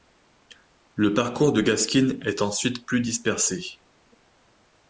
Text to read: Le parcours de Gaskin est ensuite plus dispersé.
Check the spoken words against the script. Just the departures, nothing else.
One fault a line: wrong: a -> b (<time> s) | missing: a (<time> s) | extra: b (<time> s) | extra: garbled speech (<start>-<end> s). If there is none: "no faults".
no faults